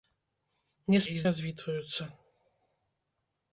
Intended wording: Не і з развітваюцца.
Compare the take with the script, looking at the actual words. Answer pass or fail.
pass